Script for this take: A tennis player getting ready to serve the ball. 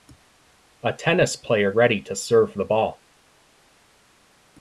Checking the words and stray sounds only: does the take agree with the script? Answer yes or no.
no